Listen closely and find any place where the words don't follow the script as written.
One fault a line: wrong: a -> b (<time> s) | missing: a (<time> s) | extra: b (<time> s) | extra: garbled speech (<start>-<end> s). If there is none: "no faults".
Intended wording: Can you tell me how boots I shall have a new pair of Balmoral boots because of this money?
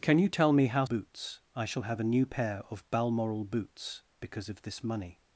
no faults